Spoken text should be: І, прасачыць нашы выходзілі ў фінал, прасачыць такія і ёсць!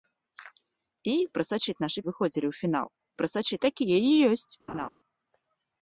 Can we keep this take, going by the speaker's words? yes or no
yes